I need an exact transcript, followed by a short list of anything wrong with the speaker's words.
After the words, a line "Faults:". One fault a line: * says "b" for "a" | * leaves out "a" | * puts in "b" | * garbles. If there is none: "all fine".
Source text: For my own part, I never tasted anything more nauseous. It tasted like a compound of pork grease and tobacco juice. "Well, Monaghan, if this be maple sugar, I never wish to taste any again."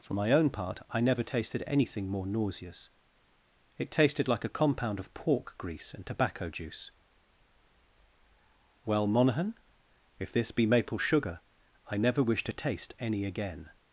For my own part, I never tasted anything more nauseous. It tasted like a compound of pork grease and tobacco juice. "Well, Monaghan, if this be maple sugar, I never wish to taste any again."
Faults:
all fine